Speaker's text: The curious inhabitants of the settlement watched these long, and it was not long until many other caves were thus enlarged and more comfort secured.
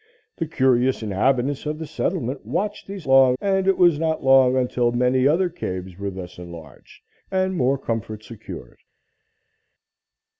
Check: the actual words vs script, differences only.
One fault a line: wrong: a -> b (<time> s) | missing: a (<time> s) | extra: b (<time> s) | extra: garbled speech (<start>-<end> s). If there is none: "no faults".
no faults